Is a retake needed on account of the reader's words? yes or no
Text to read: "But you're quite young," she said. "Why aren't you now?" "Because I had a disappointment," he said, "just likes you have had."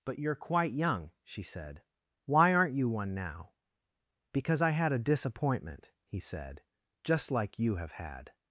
yes